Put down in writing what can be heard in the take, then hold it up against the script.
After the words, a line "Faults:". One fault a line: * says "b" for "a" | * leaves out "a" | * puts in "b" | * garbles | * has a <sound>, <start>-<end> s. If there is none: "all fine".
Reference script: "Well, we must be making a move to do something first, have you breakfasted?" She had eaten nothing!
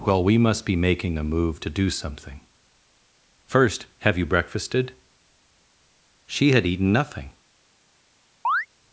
"Well, we must be making a move to do something first, have you breakfasted?" She had eaten nothing!
Faults:
* has a chirp, 8.4-8.7 s